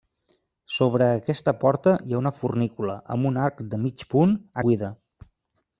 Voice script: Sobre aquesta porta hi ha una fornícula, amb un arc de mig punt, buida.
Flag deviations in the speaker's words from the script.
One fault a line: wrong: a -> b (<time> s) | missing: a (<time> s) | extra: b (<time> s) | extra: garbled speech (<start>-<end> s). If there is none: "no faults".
no faults